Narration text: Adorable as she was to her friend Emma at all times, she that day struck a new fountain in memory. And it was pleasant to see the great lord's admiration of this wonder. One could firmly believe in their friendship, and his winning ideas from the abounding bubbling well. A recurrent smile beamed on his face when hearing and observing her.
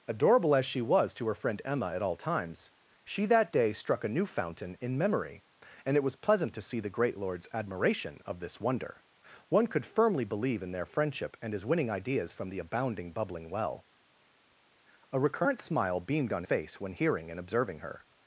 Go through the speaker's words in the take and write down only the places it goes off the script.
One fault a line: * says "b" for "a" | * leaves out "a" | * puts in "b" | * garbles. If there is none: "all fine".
* leaves out "his"